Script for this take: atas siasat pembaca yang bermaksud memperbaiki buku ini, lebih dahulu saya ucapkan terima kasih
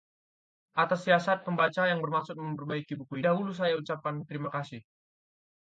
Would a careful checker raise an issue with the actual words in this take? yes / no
yes